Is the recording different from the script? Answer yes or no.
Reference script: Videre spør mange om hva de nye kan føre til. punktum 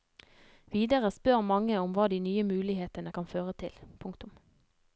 yes